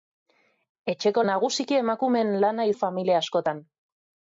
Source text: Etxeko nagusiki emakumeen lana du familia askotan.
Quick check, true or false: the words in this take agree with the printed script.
true